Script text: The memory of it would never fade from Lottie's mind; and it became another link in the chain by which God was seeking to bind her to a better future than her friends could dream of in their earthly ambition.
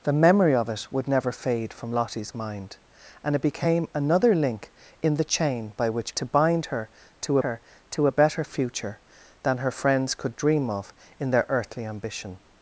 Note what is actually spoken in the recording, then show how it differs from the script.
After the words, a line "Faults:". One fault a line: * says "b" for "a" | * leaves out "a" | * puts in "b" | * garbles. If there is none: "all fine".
The memory of it would never fade from Lottie's mind; and it became another link in the chain by which To bind her to her to a better future than her friends could dream of in their earthly ambition.
Faults:
* says "To bind her" for "God was seeking"
* leaves out "bind"